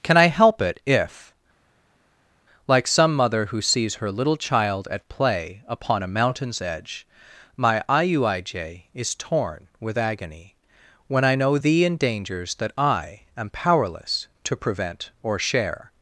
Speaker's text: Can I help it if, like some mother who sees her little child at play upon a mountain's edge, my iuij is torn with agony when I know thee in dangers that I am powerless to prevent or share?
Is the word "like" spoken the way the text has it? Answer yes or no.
yes